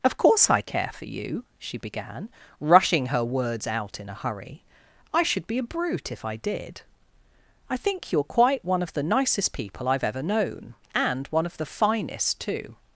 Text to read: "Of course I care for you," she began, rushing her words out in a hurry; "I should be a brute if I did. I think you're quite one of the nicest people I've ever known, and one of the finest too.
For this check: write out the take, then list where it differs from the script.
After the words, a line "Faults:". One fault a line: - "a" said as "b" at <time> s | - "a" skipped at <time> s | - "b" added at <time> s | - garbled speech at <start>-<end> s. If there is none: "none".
"Of course I care for you," she began, rushing her words out in a hurry; "I should be a brute if I did. I think you're quite one of the nicest people I've ever known, and one of the finest too.
Faults:
none